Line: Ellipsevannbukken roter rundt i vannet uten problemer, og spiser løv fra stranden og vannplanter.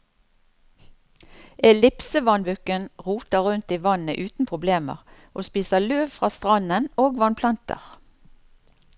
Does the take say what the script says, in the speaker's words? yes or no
yes